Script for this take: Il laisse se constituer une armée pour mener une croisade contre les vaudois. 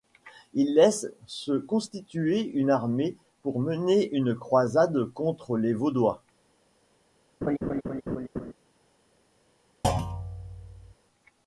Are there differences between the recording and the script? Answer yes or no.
no